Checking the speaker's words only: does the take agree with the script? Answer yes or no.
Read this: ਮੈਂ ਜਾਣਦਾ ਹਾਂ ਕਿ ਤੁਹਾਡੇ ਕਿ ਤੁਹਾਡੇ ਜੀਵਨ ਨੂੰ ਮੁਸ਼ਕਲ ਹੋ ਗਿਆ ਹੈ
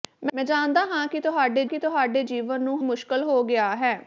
yes